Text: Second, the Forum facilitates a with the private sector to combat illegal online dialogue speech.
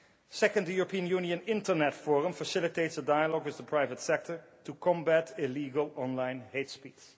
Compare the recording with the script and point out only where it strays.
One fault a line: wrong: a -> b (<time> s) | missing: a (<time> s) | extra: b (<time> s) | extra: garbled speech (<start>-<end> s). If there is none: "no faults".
extra: European Union Internet (0.7 s)
extra: dialogue (3.0 s)
wrong: dialogue -> hate (6.5 s)